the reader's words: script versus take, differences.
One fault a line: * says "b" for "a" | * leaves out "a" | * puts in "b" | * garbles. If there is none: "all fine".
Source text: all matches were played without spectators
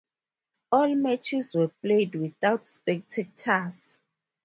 all fine